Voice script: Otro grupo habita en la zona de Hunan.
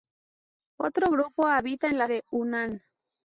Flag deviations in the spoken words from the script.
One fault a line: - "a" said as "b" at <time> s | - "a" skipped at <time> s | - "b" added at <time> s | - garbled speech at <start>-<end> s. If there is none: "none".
- "zona" skipped at 2.1 s